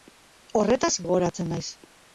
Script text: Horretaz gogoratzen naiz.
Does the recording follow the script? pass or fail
pass